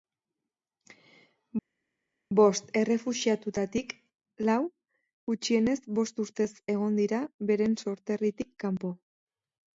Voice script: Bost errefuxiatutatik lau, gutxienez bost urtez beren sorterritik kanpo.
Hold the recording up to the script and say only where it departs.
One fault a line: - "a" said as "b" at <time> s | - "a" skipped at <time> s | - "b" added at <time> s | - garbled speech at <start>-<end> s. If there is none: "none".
- "egon dira" added at 6.7 s